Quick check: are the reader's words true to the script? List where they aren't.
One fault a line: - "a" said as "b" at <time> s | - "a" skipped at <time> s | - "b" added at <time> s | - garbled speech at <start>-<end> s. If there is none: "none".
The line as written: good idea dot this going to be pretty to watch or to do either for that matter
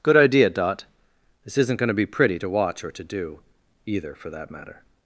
- "isn't" added at 1.6 s